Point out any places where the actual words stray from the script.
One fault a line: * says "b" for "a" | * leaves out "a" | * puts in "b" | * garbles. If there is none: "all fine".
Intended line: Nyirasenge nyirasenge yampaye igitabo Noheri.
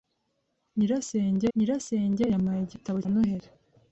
all fine